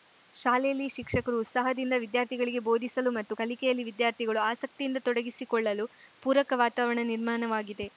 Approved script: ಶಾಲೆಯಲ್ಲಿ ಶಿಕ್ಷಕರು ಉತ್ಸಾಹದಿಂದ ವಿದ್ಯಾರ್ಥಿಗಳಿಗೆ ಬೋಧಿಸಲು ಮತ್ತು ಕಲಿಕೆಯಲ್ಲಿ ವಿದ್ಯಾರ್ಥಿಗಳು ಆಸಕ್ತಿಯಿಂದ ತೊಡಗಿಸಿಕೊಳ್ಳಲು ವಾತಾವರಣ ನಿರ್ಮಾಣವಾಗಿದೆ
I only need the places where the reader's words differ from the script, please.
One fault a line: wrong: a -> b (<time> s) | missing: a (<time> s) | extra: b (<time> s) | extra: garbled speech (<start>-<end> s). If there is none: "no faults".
extra: ಪೂರಕ (6.2 s)